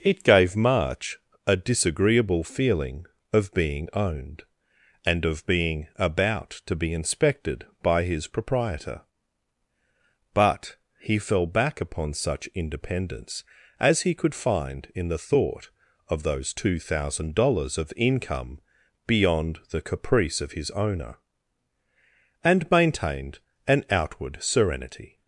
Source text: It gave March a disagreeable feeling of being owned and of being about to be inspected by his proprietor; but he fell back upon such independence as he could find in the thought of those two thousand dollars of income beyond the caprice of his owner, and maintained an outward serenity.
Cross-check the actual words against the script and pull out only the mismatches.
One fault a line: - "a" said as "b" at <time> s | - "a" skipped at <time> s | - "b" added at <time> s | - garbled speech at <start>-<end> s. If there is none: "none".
none